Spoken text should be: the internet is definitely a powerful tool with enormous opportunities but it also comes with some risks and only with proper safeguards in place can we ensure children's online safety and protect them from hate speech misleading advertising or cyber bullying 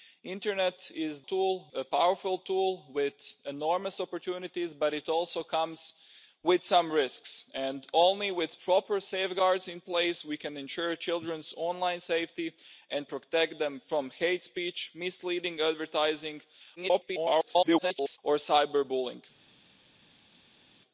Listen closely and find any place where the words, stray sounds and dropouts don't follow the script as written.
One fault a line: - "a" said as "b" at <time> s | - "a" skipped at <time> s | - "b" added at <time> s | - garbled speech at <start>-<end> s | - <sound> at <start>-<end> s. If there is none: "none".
- "definitely" said as "tool" at 1.2 s
- garbled speech at 16.8-18.2 s